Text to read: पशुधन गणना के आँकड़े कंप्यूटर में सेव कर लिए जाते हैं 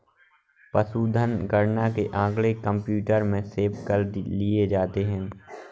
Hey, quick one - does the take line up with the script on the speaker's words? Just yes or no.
yes